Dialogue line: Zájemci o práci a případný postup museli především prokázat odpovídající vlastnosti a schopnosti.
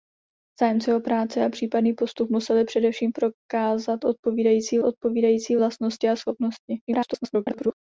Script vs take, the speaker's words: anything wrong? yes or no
yes